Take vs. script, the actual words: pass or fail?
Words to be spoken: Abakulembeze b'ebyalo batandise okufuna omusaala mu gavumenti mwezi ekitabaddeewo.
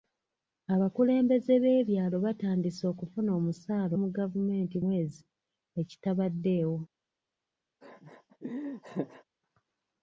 pass